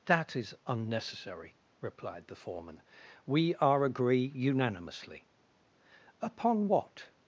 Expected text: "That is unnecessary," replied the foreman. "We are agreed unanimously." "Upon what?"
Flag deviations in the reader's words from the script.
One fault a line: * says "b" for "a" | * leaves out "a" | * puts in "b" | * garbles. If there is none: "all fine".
* says "agree" for "agreed"